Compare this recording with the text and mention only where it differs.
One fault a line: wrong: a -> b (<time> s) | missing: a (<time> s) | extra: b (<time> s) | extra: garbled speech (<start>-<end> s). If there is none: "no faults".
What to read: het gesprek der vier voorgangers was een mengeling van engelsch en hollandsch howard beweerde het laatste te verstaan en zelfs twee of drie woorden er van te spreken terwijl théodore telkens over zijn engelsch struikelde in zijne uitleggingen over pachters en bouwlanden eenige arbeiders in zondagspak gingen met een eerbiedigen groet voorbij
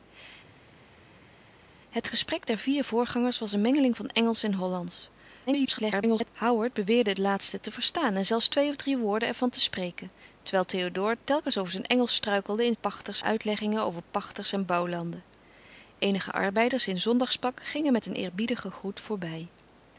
extra: garbled speech (5.5-6.3 s)
wrong: zijne -> pachters (12.8 s)